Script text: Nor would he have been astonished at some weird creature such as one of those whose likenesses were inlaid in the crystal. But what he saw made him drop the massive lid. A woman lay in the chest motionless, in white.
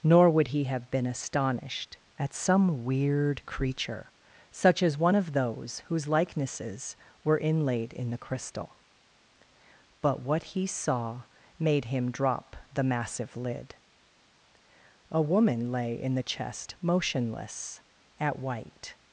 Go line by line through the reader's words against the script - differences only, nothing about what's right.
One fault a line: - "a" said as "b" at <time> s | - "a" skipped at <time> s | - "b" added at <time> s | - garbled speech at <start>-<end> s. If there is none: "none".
- "in" said as "at" at 18.2 s